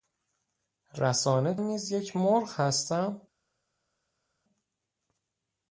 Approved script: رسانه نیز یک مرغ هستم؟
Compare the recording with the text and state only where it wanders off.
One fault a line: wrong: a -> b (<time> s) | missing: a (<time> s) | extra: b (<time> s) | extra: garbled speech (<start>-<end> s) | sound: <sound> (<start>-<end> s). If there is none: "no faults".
no faults